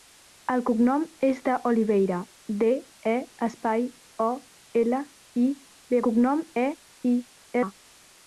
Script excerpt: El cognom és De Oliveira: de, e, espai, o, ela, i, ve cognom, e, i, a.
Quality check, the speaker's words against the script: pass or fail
pass